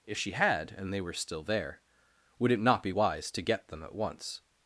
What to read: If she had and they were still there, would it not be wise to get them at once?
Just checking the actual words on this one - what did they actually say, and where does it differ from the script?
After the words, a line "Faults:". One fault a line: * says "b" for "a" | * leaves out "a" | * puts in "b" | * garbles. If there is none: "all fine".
If she had and they were still there, would it not be wise to get them at once?
Faults:
all fine